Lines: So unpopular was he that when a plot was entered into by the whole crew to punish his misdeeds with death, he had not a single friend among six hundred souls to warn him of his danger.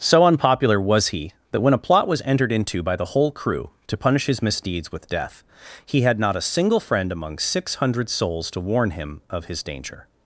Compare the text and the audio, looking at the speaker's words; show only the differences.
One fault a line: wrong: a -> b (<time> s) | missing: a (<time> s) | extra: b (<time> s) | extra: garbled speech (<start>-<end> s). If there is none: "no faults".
no faults